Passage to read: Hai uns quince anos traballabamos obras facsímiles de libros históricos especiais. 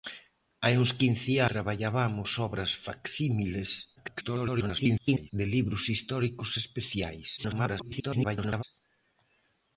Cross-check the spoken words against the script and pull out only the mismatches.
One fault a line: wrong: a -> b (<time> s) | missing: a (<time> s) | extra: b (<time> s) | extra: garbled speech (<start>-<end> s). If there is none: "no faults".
missing: anos (1.3 s)
extra: garbled speech (4.0-5.3 s)
extra: garbled speech (7.4-8.6 s)